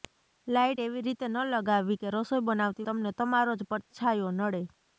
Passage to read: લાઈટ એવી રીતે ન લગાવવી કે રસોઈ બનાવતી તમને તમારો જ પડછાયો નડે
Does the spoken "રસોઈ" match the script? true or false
true